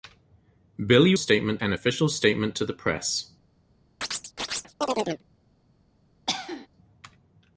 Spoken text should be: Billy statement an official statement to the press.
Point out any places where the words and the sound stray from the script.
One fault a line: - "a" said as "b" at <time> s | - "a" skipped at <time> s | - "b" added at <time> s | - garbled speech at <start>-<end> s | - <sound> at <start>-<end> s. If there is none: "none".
- chirp at 4.0-5.2 s
- cough at 6.3-6.7 s